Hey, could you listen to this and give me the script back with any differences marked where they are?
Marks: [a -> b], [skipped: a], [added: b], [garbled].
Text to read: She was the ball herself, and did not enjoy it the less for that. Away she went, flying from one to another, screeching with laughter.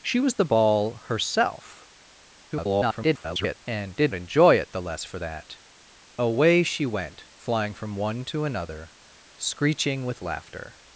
She was the ball herself, [garbled] and did [skipped: not] enjoy it the less for that. Away she went, flying from one to another, screeching with laughter.